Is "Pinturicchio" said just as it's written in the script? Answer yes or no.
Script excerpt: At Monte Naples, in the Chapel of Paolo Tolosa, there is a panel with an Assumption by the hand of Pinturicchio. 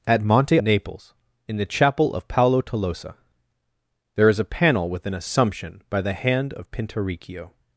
yes